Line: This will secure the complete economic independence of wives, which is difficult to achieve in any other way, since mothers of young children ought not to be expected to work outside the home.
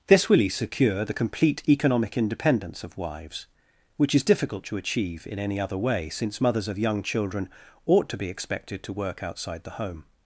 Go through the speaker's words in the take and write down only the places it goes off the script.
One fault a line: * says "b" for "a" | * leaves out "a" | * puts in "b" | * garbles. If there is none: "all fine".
* leaves out "not"